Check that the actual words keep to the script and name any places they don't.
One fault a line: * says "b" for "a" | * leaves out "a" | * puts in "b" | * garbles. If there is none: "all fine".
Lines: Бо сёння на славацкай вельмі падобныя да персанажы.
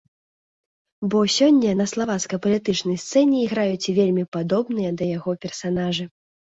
* puts in "палітычнай сцэне іграюць"
* puts in "яго"